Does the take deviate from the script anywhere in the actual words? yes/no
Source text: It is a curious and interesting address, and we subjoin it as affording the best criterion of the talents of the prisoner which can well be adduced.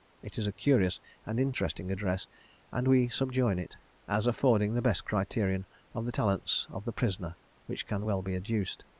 no